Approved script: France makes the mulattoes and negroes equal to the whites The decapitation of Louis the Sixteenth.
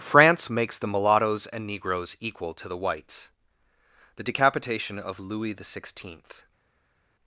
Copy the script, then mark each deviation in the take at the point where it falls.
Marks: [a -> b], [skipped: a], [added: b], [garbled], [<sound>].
France makes the mulattoes and negroes equal to the whites The decapitation of Louis the Sixteenth.